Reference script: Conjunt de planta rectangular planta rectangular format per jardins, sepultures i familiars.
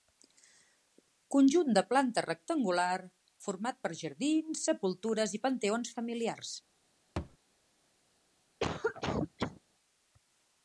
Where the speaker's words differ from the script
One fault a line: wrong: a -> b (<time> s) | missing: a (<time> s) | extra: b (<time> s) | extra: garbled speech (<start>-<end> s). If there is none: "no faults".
missing: planta rectangular (3.0 s)
extra: panteons (5.5 s)